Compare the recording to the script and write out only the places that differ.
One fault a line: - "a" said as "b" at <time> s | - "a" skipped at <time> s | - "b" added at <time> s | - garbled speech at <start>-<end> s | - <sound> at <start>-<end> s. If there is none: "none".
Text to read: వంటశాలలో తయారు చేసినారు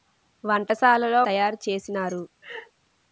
- laugh at 2.4-2.7 s